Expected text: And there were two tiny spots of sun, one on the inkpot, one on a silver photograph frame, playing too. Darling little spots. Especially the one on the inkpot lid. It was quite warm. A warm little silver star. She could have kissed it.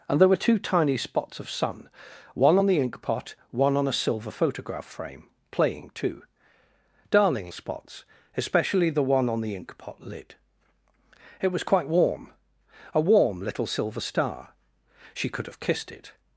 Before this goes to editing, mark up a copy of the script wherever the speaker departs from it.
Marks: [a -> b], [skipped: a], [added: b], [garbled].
And there were two tiny spots of sun, one on the inkpot, one on a silver photograph frame, playing too. Darling [skipped: little] spots. Especially the one on the inkpot lid. It was quite warm. A warm little silver star. She could have kissed it.